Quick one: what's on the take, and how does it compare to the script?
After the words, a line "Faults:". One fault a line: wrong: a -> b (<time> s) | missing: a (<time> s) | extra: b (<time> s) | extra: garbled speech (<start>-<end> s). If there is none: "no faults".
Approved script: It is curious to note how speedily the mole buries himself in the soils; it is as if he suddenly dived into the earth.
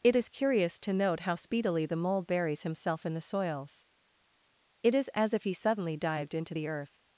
It is curious to note how speedily the mole buries himself in the soils; it is as if he suddenly dived into the earth.
Faults:
no faults